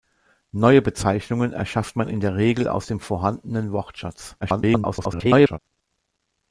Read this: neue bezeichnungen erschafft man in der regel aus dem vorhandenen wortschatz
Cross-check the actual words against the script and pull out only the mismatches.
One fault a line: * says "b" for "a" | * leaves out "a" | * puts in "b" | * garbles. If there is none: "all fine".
* garbles